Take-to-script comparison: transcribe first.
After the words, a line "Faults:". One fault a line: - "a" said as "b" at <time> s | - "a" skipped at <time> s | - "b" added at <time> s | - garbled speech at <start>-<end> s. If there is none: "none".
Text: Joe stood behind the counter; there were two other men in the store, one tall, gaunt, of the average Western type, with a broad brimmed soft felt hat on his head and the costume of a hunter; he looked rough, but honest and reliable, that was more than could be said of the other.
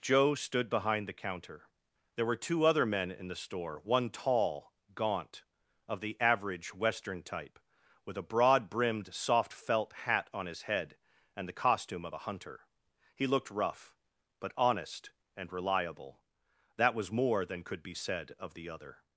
Joe stood behind the counter; there were two other men in the store, one tall, gaunt, of the average Western type, with a broad brimmed soft felt hat on his head and the costume of a hunter; he looked rough, but honest and reliable, that was more than could be said of the other.
Faults:
none